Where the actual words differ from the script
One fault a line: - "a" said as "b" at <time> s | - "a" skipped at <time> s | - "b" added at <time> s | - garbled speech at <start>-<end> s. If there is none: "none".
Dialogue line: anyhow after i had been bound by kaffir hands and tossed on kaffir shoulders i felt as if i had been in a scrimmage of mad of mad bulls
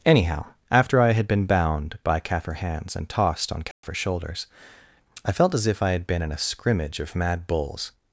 - "of mad" skipped at 7.5 s